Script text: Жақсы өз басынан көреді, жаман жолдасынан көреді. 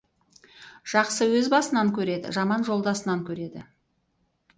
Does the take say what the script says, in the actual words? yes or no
yes